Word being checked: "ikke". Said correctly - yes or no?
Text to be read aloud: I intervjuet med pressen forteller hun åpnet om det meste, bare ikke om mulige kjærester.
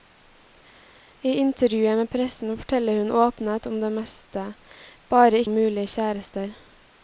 no